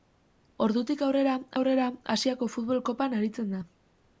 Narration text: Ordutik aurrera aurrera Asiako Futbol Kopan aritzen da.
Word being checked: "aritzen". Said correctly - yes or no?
yes